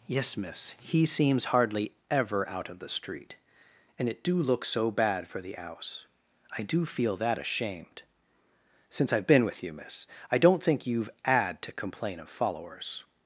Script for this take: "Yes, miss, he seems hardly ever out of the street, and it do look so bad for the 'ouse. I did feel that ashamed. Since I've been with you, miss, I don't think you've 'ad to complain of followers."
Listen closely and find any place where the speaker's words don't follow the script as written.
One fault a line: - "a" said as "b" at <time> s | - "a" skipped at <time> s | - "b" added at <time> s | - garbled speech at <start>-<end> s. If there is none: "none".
- "did" said as "do" at 6.6 s